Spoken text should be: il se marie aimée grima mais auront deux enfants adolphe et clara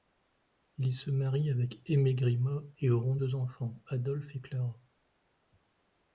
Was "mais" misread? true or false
true